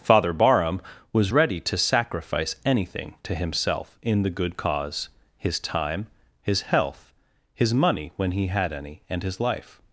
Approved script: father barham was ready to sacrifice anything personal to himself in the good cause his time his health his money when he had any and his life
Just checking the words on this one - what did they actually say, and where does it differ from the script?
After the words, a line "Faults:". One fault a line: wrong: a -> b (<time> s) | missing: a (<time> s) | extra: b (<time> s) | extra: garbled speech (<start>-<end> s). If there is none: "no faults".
father barham was ready to sacrifice anything to himself in the good cause his time his health his money when he had any and his life
Faults:
missing: personal (3.1 s)